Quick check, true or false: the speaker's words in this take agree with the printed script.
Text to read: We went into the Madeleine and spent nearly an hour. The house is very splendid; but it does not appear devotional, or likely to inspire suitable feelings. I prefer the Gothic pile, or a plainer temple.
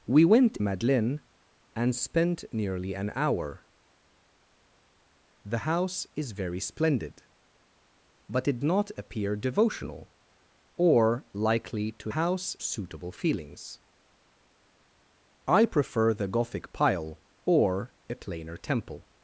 false